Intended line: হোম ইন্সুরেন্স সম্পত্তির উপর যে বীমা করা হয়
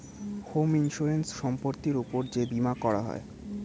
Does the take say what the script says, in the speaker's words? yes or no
yes